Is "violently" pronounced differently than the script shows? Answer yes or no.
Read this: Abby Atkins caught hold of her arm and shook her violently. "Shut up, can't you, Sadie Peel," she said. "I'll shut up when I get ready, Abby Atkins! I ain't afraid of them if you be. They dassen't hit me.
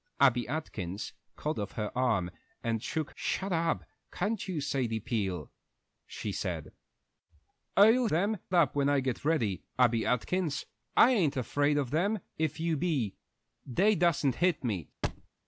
yes